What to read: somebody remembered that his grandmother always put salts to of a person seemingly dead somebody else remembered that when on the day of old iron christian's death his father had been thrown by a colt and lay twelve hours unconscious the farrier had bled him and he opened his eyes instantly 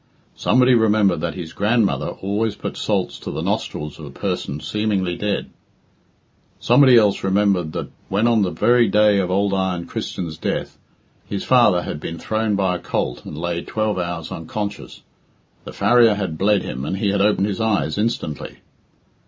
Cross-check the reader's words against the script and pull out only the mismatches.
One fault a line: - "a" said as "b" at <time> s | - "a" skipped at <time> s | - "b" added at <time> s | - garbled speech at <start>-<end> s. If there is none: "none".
- "the nostrils" added at 3.3 s
- "very" added at 8.5 s
- "had" added at 17.1 s